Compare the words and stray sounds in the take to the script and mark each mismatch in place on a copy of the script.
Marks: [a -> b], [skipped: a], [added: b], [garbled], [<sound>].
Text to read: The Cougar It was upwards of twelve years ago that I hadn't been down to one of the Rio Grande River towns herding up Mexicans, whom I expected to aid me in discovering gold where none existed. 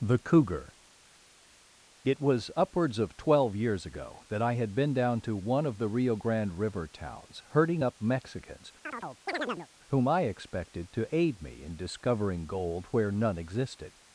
The Cougar It was upwards of twelve years ago that I [hadn't -> had] been down to one of the Rio Grande River towns herding up Mexicans, [chirp] whom I expected to aid me in discovering gold where none existed.